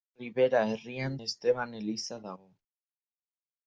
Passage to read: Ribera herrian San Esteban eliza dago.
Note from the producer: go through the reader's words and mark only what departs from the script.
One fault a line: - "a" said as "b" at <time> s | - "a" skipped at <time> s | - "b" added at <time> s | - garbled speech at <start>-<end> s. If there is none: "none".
- "San" skipped at 1.2 s